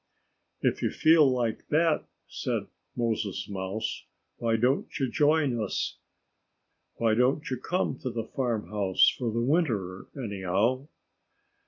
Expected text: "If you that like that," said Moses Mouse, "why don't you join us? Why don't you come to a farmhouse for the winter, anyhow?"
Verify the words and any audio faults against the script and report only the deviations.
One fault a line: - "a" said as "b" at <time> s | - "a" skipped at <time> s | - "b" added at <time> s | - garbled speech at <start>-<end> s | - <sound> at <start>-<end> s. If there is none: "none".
- "that" said as "feel" at 0.9 s
- "a" said as "the" at 8.1 s